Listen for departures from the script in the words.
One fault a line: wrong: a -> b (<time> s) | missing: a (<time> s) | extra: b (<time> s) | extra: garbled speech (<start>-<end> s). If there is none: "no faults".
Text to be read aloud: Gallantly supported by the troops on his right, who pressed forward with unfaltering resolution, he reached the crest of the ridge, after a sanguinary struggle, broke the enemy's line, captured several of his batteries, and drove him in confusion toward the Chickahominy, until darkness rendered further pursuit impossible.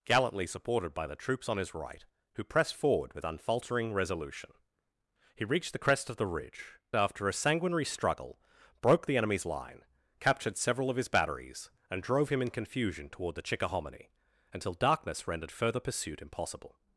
no faults